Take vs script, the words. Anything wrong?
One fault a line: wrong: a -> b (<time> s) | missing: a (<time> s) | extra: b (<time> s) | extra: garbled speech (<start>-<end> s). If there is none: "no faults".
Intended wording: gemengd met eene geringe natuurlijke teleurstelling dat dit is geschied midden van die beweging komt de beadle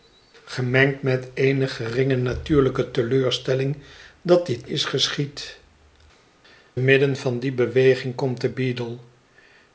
no faults